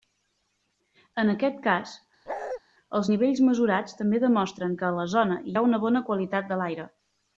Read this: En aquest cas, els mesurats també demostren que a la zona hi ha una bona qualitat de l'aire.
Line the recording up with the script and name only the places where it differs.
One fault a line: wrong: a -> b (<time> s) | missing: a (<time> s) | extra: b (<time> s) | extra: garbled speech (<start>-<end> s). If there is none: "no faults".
extra: nivells (3.1 s)